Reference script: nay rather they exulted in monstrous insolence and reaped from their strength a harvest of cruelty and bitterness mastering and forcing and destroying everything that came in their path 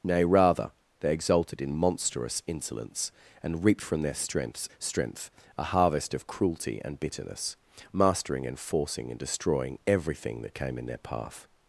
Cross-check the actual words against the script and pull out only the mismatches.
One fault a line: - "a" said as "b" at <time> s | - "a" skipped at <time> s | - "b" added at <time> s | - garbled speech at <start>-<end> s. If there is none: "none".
- "strength" added at 4.8 s